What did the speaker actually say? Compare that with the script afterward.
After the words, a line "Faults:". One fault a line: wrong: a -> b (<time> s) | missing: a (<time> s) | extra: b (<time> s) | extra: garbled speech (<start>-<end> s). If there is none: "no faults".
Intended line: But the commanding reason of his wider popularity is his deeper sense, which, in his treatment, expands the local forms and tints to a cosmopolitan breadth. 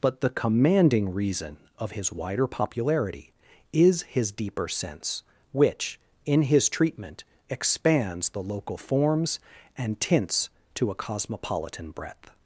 But the commanding reason of his wider popularity is his deeper sense, which, in his treatment, expands the local forms and tints to a cosmopolitan breadth.
Faults:
no faults